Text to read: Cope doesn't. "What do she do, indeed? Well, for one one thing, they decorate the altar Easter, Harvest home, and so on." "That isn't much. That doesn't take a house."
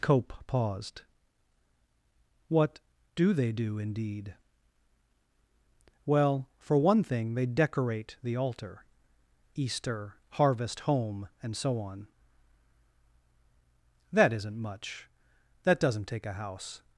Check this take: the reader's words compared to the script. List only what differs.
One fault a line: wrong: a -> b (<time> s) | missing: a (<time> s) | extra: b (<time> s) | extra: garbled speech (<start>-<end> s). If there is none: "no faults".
wrong: doesn't -> paused (0.5 s)
wrong: she -> they (3.3 s)
missing: one (7.0 s)